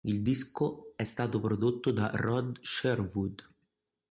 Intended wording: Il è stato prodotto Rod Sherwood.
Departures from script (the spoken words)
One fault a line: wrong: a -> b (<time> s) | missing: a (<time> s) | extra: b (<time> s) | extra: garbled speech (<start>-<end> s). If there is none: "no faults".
extra: disco (0.2 s)
extra: da (1.9 s)